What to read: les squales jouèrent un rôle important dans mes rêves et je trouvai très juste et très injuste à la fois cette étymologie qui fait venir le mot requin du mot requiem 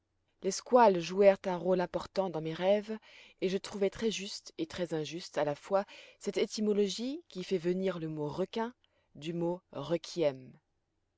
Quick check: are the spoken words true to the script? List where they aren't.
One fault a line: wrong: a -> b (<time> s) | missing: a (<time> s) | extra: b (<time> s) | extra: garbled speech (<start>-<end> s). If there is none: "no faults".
no faults